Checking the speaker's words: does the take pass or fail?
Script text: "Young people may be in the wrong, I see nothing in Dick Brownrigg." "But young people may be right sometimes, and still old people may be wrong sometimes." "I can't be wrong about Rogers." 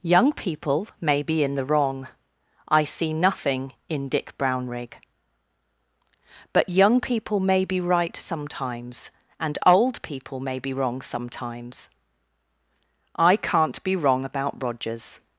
fail